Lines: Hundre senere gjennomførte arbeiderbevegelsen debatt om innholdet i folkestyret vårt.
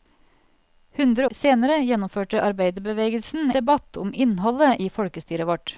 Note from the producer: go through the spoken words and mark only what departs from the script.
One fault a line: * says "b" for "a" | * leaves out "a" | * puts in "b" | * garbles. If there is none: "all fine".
all fine